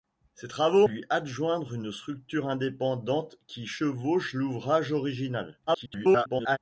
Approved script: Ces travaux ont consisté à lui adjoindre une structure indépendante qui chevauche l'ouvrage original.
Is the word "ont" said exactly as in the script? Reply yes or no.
no